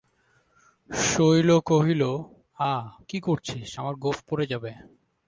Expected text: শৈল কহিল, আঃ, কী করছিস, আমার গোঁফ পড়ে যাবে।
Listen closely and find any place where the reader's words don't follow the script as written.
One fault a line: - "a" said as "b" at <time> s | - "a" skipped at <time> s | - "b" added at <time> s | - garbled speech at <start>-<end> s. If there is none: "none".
none